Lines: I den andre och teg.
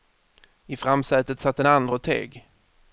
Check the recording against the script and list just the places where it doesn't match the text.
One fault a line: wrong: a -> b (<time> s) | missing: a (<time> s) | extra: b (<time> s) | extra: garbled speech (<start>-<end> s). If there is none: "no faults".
extra: framsätet satt (0.8 s)